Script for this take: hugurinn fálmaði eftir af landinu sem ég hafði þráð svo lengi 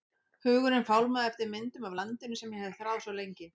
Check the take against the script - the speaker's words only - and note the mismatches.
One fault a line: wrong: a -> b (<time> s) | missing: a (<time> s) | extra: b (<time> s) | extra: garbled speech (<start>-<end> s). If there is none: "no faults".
extra: myndum (1.5 s)